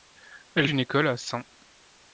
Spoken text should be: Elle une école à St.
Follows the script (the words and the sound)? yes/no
yes